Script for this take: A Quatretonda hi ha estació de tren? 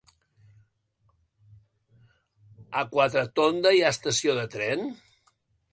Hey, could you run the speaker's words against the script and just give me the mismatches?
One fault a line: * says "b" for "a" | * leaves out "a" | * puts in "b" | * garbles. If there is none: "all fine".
all fine